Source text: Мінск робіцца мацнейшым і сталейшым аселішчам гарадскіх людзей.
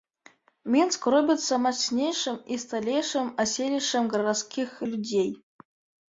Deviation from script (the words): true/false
false